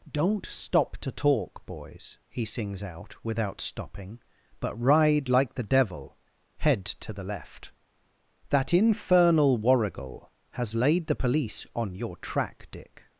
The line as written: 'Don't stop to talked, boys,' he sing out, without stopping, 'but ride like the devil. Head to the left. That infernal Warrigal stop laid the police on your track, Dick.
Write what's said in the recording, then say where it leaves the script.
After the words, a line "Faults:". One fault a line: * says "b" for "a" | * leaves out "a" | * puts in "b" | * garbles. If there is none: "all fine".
'Don't stop to talk, boys,' he sings out, without stopping, 'but ride like the devil. Head to the left. That infernal Warrigal has laid the police on your track, Dick.
Faults:
* says "talk" for "talked"
* says "sings" for "sing"
* says "has" for "stop"